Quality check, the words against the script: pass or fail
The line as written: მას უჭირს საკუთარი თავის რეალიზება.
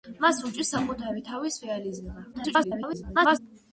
fail